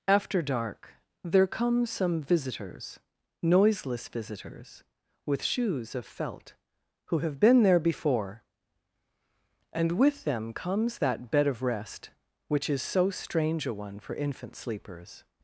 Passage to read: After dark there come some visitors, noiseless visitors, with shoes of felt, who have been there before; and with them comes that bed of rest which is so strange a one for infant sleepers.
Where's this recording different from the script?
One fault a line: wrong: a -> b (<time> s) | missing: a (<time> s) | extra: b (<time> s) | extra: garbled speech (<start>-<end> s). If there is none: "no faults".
no faults